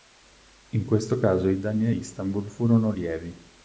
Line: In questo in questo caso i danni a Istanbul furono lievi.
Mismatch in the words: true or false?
true